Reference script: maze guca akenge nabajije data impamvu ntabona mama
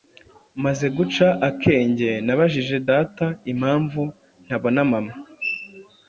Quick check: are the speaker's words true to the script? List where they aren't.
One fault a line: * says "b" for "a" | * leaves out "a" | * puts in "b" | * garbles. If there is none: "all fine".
all fine